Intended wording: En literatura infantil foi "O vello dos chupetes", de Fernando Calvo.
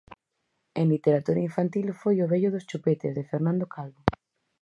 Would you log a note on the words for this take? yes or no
no